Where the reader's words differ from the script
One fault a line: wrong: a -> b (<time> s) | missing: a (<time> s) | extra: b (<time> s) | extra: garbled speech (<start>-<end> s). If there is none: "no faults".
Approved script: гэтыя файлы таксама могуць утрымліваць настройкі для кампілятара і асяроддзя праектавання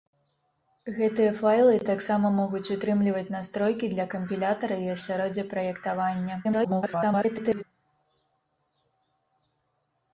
extra: garbled speech (6.4-7.6 s)